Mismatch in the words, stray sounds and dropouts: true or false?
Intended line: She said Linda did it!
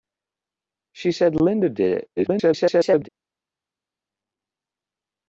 true